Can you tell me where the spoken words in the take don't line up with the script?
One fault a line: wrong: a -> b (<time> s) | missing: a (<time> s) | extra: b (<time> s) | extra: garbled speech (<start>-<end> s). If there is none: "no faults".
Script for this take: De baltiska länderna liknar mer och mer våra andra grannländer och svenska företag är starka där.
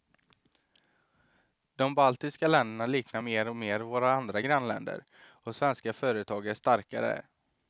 no faults